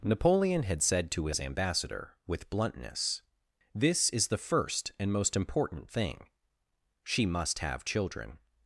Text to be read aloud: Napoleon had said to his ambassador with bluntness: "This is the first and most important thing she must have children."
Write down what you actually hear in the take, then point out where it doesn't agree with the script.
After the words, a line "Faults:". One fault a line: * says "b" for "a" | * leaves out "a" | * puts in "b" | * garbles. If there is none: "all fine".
Napoleon had said to his ambassador with bluntness: "This is the first and most important thing she must have children."
Faults:
all fine